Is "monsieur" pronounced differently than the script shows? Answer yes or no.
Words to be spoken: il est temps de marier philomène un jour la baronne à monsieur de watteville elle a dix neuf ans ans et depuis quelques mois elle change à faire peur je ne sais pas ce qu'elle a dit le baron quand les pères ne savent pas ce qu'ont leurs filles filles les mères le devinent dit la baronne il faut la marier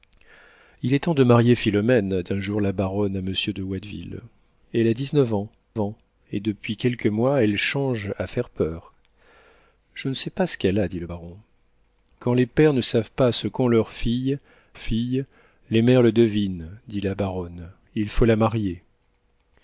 no